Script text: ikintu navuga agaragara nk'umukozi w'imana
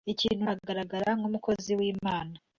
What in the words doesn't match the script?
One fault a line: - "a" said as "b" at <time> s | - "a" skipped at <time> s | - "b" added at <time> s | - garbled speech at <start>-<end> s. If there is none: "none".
- "navuga" skipped at 0.5 s